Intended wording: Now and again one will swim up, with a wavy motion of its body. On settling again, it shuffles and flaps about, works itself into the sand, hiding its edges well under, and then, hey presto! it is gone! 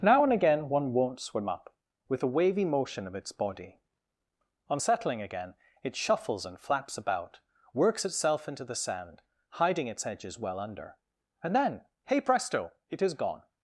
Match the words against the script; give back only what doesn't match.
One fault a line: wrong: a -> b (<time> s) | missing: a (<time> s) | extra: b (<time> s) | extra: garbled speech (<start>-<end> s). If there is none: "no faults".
wrong: will -> won't (0.9 s)